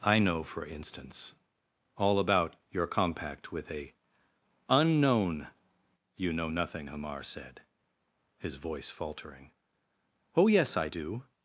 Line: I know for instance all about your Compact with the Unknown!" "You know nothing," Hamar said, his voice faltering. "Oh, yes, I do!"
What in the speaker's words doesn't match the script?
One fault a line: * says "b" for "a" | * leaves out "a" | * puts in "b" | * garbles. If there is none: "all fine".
* says "a" for "the"